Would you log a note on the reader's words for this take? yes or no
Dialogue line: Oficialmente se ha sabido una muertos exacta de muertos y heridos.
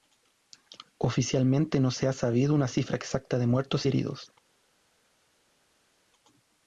yes